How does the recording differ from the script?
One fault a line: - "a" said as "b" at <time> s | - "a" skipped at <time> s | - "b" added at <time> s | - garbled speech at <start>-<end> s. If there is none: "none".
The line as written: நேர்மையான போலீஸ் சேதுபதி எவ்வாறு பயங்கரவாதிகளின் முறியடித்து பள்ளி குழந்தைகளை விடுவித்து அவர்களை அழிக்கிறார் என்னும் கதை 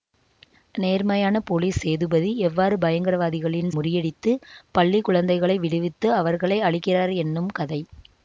none